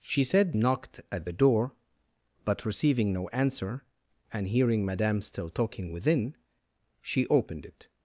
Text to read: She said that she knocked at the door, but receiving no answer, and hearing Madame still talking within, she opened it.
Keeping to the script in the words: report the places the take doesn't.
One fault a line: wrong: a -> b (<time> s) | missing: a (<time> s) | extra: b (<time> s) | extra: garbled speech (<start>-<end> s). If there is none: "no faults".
missing: that she (0.5 s)